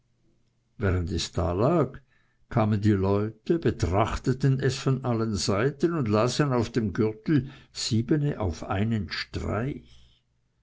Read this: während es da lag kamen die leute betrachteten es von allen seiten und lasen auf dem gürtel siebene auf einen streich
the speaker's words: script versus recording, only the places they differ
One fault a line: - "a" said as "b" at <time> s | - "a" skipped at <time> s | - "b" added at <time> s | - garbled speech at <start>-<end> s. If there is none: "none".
none